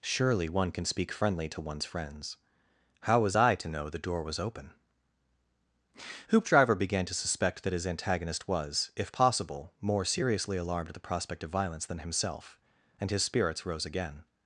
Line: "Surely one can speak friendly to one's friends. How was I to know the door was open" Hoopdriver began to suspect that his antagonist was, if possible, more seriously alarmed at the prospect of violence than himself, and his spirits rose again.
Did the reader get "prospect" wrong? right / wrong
right